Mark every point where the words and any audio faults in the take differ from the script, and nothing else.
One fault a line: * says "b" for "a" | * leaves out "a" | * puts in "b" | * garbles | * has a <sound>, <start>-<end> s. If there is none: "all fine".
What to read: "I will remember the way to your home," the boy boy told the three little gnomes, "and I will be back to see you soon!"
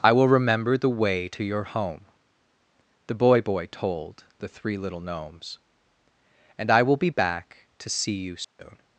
* has a dropout, 8.4-8.6 s